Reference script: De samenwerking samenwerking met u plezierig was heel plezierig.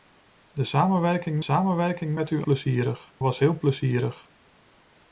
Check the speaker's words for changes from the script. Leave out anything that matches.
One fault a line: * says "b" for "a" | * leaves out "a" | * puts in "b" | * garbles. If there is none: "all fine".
all fine